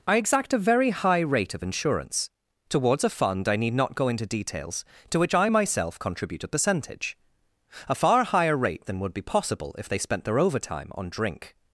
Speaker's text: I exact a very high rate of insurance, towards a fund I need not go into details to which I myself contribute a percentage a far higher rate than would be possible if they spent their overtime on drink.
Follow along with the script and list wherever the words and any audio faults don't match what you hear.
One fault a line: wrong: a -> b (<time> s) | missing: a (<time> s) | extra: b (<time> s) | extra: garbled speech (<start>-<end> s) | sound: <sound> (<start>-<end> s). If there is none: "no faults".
no faults